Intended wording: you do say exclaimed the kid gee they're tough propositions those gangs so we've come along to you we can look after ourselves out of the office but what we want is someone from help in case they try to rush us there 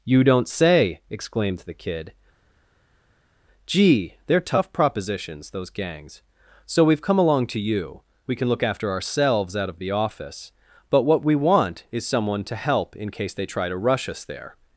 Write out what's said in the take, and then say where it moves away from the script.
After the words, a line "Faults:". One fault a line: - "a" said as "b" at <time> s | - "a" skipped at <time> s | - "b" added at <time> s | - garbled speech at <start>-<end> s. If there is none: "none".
you don't say exclaimed the kid gee they're tough propositions those gangs so we've come along to you we can look after ourselves out of the office but what we want is someone to help in case they try to rush us there
Faults:
- "do" said as "don't" at 0.2 s
- "from" said as "to" at 12.4 s